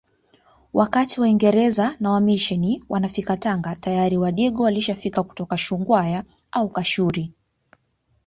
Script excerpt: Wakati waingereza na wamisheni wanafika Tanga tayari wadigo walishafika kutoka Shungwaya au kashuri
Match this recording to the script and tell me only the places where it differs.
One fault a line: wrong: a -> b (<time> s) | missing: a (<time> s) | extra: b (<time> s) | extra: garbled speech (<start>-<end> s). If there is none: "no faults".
no faults